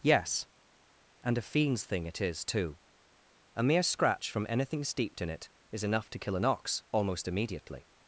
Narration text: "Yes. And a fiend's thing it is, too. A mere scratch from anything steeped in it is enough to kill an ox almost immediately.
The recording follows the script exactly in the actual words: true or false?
true